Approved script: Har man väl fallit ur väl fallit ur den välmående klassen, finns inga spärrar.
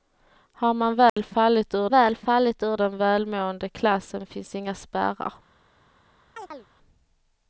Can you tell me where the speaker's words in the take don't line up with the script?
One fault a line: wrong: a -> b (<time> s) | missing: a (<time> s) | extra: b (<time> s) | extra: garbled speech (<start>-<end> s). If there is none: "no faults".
no faults